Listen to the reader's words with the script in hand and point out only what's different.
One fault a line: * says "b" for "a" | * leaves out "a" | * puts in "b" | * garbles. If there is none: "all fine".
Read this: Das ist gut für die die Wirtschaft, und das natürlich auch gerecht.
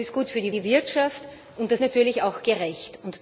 all fine